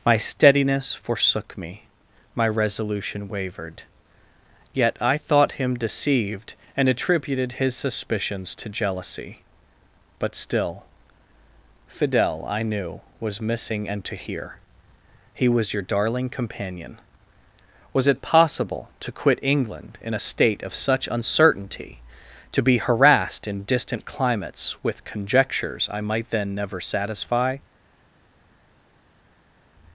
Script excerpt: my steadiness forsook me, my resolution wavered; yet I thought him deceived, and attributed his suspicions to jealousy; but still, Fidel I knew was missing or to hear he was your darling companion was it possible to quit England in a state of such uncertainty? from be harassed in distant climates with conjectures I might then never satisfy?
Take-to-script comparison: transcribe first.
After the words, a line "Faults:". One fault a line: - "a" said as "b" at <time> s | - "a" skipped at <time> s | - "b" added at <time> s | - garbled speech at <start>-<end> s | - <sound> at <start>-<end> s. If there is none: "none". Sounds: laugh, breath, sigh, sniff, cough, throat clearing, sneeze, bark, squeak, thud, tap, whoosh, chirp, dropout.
my steadiness forsook me, my resolution wavered; yet I thought him deceived, and attributed his suspicions to jealousy; but still, Fidel I knew was missing and to hear he was your darling companion was it possible to quit England in a state of such uncertainty? to be harassed in distant climates with conjectures I might then never satisfy?
Faults:
- "or" said as "and" at 13.9 s
- "from" said as "to" at 22.5 s